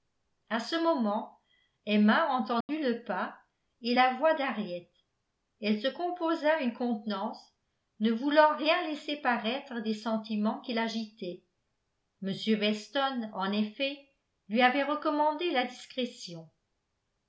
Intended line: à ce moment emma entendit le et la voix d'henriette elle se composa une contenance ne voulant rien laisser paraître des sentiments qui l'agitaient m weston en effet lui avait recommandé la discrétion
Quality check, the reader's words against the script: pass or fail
fail